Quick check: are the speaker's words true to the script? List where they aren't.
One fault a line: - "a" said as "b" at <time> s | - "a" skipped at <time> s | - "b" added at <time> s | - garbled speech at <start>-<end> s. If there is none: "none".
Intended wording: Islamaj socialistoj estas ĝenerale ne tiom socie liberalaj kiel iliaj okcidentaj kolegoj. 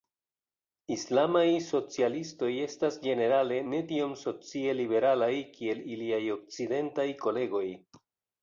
none